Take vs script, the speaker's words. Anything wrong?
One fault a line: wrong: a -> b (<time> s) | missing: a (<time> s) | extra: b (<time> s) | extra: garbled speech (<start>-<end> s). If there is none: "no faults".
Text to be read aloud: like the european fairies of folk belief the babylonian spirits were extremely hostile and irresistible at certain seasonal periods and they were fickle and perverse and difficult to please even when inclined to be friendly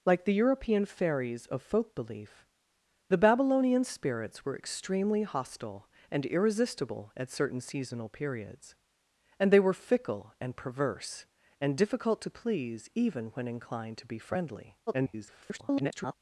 extra: garbled speech (14.9-16.1 s)